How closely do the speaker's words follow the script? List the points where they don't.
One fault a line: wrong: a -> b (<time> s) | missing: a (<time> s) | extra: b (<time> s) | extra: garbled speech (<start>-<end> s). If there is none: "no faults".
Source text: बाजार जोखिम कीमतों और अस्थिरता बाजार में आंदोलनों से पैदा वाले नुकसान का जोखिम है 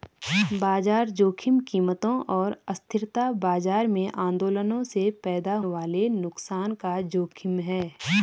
no faults